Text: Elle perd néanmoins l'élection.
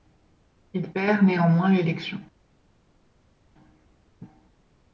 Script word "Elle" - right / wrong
wrong